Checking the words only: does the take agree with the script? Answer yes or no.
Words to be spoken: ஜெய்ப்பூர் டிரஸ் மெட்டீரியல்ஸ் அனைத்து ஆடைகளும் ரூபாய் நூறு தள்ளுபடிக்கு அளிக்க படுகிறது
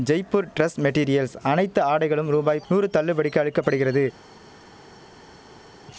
yes